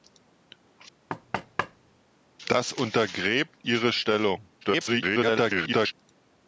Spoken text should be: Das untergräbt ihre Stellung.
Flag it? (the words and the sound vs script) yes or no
yes